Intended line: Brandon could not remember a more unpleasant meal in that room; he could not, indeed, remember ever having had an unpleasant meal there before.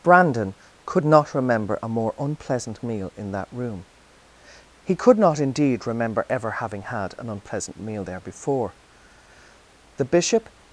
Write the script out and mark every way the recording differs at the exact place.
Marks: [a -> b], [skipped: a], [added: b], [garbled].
Brandon could not remember a more unpleasant meal in that room; he could not, indeed, remember ever having had an unpleasant meal there before. [added: The Bishop]